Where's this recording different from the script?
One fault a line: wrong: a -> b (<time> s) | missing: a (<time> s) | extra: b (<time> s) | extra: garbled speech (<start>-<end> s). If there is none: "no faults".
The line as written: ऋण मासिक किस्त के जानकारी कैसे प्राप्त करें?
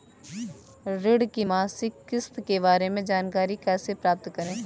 extra: की (1.2 s)
extra: बारे में (2.6 s)